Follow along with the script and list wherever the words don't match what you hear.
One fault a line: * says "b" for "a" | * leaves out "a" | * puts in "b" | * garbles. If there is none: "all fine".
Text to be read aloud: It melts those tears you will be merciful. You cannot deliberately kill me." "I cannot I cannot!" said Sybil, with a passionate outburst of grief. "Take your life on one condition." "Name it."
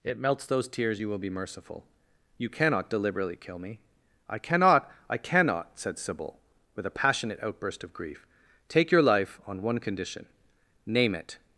all fine